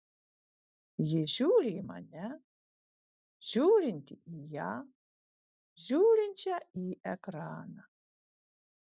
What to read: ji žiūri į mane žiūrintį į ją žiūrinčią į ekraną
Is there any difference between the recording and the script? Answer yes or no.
no